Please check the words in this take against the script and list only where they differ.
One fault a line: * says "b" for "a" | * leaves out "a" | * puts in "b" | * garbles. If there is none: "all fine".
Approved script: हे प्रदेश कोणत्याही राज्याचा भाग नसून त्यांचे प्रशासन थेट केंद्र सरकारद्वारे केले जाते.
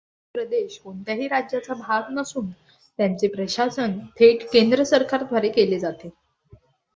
all fine